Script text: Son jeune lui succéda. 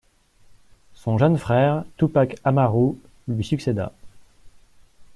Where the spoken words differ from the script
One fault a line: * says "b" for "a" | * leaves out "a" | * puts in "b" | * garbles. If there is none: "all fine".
* puts in "frère Tupac Amaru"